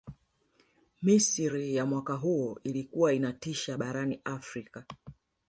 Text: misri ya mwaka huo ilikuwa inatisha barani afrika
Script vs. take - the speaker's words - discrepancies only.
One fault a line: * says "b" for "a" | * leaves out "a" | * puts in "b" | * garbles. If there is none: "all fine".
all fine